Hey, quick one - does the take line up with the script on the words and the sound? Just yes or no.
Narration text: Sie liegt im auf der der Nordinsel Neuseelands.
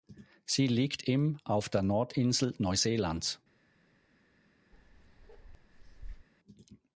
no